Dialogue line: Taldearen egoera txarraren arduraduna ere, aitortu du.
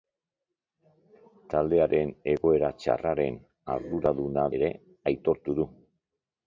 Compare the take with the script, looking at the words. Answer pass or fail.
pass